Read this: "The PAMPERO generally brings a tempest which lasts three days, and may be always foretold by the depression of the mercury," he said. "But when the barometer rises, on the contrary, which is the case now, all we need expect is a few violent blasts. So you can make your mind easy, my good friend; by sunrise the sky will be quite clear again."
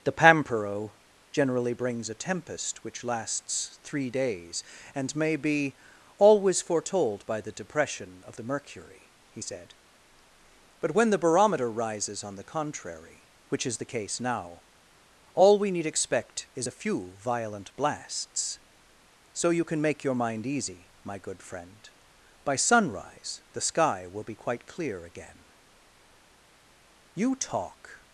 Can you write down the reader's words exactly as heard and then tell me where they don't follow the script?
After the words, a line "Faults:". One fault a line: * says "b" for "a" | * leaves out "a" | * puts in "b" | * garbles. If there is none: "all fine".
"The PAMPERO generally brings a tempest which lasts three days, and may be always foretold by the depression of the mercury," he said. "But when the barometer rises, on the contrary, which is the case now, all we need expect is a few violent blasts. So you can make your mind easy, my good friend; by sunrise the sky will be quite clear again." "You talk
Faults:
* puts in "You talk"